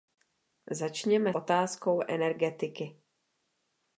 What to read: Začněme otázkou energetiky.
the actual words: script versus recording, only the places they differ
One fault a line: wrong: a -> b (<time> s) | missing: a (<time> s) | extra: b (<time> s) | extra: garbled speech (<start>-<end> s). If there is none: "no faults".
no faults